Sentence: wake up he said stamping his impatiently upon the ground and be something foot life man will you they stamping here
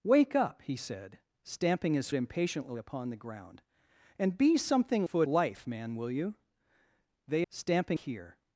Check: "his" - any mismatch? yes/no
no